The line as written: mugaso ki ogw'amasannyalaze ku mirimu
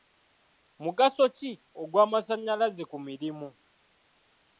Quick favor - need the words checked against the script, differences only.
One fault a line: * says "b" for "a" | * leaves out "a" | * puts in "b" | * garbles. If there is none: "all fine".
all fine